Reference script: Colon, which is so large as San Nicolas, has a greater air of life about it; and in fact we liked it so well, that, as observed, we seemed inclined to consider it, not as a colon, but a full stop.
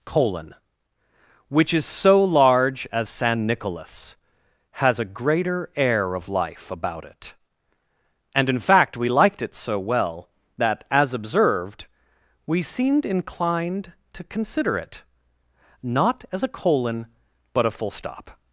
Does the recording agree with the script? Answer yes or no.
yes